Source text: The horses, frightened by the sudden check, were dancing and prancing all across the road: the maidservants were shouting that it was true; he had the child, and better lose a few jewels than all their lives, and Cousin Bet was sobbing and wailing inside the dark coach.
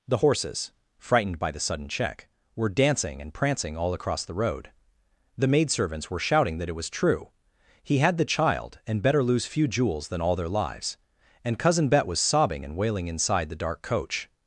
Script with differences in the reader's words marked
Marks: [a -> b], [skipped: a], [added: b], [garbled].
The horses, frightened by the sudden check, were dancing and prancing all across the road: the maidservants were shouting that it was true; he had the child, and better lose [skipped: a] few jewels than all their lives, and Cousin Bet was sobbing and wailing inside the dark coach.